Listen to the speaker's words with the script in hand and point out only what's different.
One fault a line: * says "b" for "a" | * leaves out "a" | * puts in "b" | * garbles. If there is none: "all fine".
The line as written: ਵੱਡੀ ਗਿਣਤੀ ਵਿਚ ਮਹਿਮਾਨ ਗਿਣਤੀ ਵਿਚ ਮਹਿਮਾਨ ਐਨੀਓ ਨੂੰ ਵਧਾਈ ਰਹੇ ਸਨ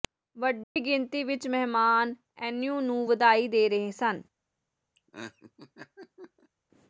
* leaves out "ਗਿਣਤੀ ਵਿਚ ਮਹਿਮਾਨ"
* puts in "ਦੇ"